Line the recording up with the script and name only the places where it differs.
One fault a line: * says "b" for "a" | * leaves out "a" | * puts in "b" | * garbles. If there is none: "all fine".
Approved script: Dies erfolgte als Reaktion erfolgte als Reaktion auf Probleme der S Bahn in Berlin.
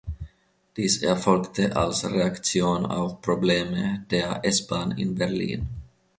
* leaves out "erfolgte als Reaktion"